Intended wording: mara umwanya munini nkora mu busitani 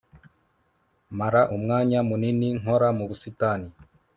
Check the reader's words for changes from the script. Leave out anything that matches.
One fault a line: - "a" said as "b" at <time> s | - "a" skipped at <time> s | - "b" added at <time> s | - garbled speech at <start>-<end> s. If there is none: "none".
none